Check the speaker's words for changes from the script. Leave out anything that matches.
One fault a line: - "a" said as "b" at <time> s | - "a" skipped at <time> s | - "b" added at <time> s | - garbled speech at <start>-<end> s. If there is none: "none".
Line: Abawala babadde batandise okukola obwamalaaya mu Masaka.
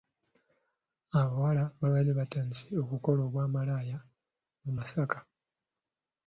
none